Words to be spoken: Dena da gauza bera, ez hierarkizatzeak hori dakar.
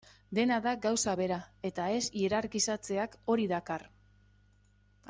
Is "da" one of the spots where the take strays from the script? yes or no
no